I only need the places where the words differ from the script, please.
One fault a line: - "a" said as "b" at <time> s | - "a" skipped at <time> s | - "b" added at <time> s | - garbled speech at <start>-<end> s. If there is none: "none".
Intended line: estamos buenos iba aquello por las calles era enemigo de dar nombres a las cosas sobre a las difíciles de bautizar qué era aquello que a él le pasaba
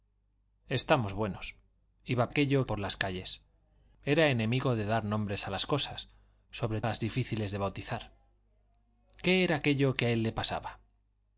none